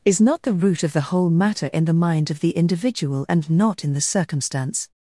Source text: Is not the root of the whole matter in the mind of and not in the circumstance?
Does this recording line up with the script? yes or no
no